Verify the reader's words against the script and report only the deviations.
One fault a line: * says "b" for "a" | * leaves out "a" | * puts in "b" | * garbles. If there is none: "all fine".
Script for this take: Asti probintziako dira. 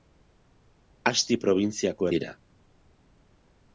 all fine